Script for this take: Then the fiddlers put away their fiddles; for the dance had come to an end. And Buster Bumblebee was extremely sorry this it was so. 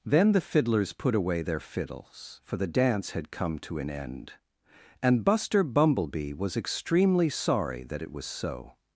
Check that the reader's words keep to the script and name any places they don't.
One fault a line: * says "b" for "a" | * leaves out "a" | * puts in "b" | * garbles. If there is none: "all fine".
* says "that" for "this"